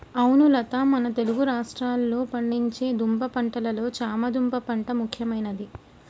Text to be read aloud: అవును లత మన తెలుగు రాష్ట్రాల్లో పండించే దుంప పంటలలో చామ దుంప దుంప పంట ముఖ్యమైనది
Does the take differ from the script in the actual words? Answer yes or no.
yes